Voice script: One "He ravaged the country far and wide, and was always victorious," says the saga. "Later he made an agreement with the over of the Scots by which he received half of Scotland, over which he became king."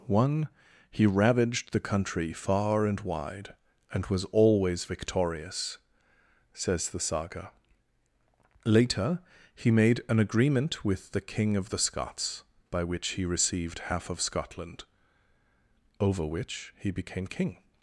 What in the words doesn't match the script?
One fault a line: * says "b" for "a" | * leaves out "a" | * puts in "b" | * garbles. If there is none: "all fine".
* says "king" for "over"